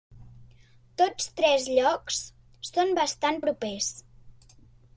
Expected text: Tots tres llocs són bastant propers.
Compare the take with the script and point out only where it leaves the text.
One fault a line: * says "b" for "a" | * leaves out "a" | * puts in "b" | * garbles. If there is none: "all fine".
all fine